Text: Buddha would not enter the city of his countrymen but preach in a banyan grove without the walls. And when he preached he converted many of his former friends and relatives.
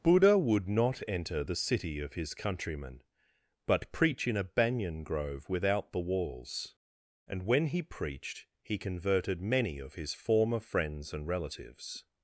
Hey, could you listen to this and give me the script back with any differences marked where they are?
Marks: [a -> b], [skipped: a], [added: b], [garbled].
Buddha would not enter the city of his countrymen but preach in a banyan grove without the walls. And when he preached he converted many of his former friends and relatives.